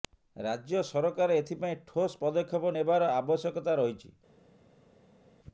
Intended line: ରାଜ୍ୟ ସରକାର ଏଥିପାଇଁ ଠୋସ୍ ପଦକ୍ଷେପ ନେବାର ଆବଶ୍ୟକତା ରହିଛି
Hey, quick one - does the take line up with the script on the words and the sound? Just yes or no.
yes